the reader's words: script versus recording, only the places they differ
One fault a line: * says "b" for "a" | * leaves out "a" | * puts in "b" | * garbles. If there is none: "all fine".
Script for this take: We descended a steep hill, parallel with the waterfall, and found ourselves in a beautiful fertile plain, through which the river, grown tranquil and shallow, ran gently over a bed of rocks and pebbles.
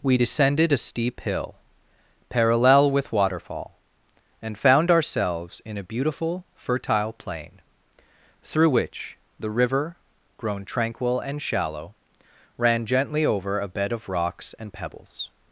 * leaves out "the"